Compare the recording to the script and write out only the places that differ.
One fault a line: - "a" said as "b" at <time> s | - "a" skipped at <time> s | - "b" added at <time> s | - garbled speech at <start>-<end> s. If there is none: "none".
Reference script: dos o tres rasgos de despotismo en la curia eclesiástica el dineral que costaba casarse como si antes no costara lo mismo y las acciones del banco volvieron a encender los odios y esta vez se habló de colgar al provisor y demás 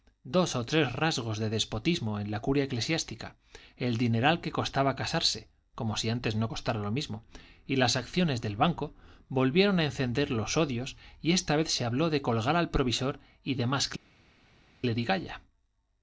none